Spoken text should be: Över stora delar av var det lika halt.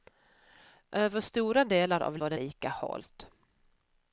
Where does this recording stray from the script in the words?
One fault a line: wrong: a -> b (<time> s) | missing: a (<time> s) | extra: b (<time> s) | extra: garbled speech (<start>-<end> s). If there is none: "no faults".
no faults